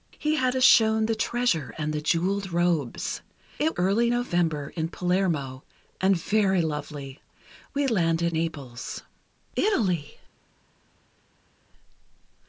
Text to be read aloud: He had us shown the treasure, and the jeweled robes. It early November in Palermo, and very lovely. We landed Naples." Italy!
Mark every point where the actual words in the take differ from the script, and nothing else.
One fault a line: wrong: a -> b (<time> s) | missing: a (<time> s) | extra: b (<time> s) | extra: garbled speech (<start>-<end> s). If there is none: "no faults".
no faults